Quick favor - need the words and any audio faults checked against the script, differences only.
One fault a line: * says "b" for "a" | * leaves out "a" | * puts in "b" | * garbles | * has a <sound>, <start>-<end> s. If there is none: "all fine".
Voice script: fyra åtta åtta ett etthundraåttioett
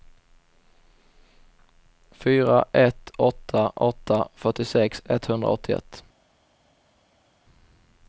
* puts in "ett"
* says "fyrtiosex" for "ett"